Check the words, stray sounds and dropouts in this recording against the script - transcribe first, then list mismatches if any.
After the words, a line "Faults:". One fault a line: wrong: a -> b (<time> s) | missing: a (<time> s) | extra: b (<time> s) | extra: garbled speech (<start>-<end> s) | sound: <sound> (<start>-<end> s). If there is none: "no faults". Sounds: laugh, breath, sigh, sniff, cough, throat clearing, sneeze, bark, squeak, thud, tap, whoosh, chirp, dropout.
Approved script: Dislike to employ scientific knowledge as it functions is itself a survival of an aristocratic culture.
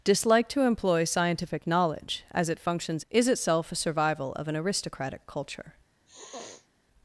Dislike to employ scientific knowledge as it functions is itself a survival of an aristocratic culture.
Faults:
sound: sniff (6.1-6.7 s)